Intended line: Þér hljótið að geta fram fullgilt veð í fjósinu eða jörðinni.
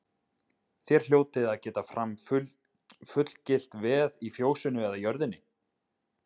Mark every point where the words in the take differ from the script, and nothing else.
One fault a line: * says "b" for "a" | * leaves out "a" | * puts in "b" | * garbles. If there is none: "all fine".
all fine